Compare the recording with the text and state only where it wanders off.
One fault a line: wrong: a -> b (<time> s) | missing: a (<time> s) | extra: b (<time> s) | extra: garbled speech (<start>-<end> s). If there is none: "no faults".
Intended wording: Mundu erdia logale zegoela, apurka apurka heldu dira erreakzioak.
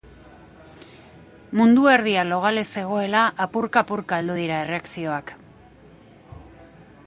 no faults